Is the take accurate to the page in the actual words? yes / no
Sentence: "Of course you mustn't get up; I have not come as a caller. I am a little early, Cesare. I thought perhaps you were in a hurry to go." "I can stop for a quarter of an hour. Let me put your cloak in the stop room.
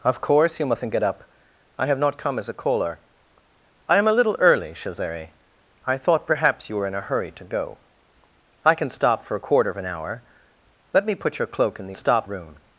yes